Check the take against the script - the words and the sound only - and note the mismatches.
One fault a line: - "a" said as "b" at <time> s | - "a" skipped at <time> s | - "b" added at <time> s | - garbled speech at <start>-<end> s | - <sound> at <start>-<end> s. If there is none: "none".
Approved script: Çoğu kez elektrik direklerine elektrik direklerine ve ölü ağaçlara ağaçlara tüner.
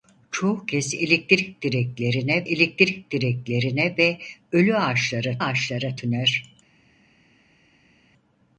none